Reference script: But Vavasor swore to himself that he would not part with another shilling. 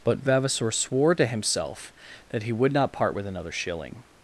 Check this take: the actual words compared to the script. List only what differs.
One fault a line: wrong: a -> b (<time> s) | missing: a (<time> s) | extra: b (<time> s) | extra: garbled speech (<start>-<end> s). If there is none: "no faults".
no faults